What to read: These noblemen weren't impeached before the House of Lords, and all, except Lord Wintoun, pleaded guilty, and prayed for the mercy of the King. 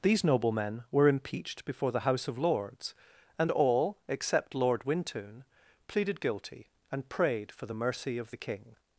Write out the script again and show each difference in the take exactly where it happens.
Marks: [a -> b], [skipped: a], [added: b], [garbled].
These noblemen [weren't -> were] impeached before the House of Lords, and all, except Lord Wintoun, pleaded guilty, and prayed for the mercy of the King.